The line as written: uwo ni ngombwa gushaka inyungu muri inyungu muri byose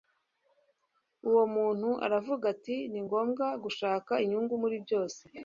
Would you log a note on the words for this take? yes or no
yes